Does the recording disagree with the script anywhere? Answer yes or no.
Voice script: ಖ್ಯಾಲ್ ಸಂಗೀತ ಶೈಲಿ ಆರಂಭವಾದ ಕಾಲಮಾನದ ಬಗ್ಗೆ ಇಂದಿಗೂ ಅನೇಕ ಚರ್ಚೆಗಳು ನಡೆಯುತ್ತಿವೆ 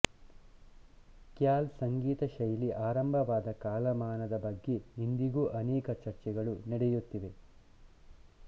no